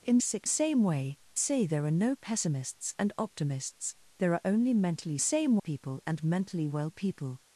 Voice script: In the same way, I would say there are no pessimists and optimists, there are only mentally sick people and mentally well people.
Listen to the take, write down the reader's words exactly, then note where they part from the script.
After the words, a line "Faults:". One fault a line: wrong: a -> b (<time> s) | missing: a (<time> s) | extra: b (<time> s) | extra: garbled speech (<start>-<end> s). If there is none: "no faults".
In sick same way, say there are no pessimists and optimists, there are only mentally same people and mentally well people.
Faults:
wrong: the -> sick (0.2 s)
missing: I would (1.2 s)
wrong: sick -> same (5.2 s)